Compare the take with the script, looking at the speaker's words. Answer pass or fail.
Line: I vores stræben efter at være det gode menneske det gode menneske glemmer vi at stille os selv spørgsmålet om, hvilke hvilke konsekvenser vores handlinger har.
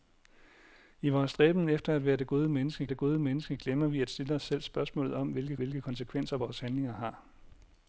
pass